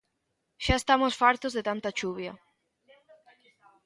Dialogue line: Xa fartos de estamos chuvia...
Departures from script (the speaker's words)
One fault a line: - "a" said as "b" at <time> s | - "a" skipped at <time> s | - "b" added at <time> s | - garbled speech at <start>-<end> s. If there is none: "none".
- "estamos" added at 0.8 s
- "estamos" said as "tanta" at 1.7 s